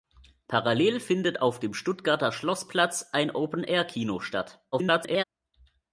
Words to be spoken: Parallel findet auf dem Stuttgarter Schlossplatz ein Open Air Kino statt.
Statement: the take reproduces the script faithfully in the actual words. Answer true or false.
false